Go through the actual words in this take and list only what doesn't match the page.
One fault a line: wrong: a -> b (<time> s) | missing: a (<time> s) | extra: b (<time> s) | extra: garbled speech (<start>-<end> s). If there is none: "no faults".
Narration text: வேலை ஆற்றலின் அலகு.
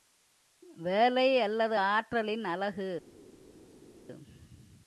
extra: அல்லது (1.4 s)